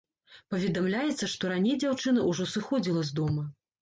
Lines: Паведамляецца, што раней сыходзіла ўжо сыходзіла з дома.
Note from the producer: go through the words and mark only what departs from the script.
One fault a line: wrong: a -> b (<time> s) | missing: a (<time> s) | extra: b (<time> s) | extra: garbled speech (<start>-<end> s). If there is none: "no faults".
wrong: сыходзіла -> дзяўчына (1.8 s)